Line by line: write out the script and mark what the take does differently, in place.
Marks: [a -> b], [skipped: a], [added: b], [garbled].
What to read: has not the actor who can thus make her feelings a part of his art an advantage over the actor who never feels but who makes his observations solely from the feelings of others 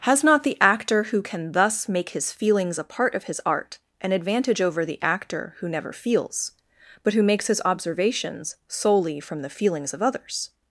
has not the actor who can thus make [her -> his] feelings a part of his art an advantage over the actor who never feels but who makes his observations solely from the feelings of others